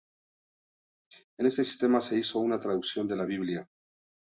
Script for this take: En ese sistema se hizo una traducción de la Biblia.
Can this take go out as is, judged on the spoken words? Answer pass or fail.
fail